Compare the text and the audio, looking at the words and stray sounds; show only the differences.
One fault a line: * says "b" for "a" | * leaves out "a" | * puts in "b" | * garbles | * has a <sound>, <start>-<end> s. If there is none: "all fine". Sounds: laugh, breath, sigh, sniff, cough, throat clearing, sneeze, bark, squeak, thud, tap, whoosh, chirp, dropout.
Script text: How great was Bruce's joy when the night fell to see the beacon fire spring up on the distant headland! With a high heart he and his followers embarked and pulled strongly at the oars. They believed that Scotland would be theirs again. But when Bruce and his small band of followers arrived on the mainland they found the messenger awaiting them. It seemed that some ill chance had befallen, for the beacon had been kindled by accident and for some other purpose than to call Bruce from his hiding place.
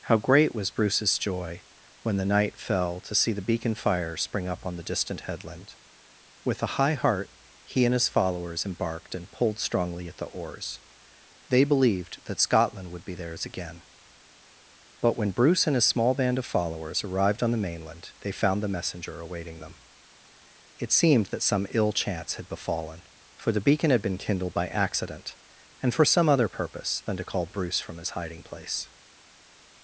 all fine